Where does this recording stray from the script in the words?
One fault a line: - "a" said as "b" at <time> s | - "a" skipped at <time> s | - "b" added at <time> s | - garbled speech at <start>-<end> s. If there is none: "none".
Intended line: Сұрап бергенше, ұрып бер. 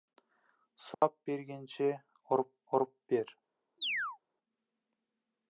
- "ұрып" added at 2.8 s